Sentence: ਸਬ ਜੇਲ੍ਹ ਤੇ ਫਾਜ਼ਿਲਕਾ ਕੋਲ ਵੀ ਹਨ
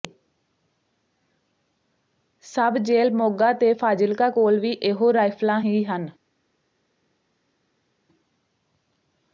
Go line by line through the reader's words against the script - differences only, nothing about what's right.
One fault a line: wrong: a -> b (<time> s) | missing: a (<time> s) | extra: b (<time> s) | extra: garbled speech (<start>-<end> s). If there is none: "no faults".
extra: ਮੋਗਾ (3.1 s)
extra: ਇਹੋ ਰਾਈਫਲਾਂ ਹੀ (4.7 s)